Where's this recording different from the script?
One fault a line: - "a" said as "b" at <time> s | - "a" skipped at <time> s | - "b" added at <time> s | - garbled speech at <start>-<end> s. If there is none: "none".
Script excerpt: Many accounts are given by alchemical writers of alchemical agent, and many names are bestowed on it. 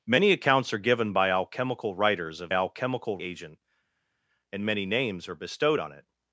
none